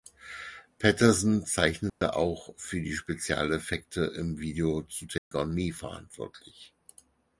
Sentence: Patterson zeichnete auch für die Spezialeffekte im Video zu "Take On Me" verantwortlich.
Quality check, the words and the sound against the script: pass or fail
fail